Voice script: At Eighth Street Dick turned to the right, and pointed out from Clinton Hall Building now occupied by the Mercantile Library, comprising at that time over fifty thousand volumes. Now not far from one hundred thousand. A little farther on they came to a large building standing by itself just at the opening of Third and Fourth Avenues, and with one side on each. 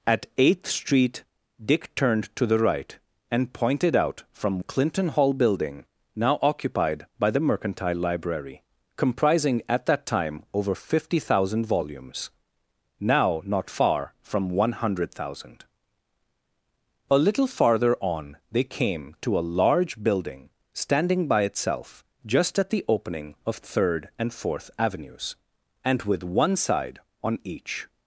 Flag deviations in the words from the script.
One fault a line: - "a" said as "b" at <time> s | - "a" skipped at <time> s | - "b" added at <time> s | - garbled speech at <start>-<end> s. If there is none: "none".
none